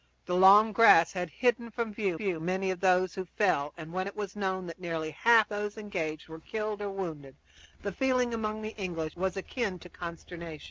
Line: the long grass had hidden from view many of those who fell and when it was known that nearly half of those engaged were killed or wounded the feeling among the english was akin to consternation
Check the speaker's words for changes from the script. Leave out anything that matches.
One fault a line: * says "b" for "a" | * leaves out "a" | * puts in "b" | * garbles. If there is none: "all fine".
* puts in "view"
* leaves out "of"